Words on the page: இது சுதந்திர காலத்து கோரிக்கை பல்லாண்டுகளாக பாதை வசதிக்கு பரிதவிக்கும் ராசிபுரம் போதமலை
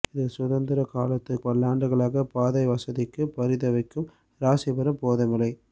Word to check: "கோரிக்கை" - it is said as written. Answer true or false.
false